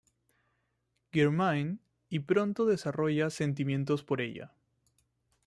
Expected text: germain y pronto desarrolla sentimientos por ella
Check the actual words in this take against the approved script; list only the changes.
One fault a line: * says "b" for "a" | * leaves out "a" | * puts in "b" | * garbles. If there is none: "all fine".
all fine